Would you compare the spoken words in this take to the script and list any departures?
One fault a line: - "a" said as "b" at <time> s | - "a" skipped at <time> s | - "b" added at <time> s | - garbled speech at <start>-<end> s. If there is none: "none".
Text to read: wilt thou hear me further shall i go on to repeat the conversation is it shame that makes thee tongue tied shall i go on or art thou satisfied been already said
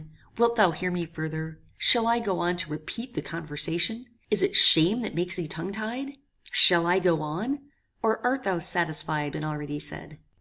none